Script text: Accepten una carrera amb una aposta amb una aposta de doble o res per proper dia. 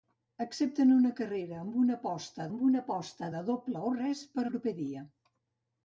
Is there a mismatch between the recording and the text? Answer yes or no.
no